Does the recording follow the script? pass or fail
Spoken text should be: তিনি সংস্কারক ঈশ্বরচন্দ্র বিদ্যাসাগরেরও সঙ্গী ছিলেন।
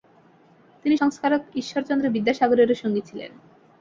pass